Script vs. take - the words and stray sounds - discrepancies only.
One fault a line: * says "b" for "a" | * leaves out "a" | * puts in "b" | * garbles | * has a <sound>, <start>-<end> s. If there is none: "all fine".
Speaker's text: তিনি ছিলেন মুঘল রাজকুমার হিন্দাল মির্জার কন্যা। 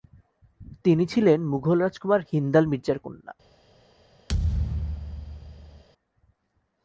* has a thud, 4.3-5.8 s